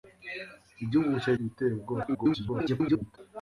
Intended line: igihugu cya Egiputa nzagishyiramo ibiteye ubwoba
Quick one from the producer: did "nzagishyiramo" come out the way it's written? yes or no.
no